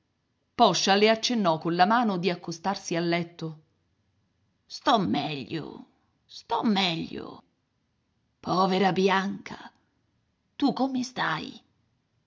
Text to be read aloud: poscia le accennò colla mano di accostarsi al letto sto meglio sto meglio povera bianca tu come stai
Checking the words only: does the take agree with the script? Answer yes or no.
yes